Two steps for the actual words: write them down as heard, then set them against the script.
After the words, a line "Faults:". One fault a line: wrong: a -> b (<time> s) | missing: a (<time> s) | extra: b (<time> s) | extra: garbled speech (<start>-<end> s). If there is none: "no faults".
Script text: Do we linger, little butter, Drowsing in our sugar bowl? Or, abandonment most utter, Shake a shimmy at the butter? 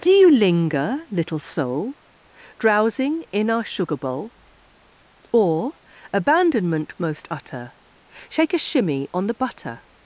Do you linger, little soul, Drowsing in our sugar bowl? Or, abandonment most utter, Shake a shimmy on the butter?
Faults:
wrong: we -> you (0.1 s)
wrong: butter -> soul (1.4 s)
wrong: at -> on (9.1 s)